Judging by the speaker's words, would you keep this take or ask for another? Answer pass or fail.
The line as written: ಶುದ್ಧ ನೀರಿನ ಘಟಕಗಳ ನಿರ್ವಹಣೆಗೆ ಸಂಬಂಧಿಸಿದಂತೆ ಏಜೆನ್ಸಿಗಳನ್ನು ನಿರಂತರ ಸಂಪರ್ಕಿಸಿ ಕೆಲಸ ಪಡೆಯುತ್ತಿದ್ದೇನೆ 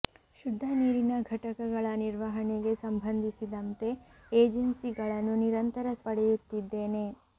fail